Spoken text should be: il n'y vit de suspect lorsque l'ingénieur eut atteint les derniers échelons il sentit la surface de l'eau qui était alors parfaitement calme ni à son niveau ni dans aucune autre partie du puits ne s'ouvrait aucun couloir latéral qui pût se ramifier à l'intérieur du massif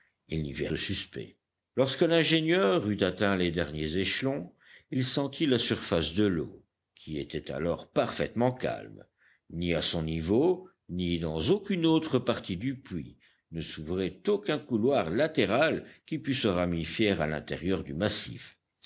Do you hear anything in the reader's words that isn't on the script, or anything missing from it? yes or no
no